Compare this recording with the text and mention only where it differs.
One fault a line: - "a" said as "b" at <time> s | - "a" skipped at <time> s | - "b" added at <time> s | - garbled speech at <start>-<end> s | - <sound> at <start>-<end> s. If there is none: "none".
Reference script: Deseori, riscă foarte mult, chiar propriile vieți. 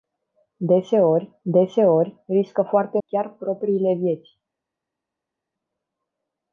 - "deseori" added at 1.4 s
- "mult" skipped at 3.0 s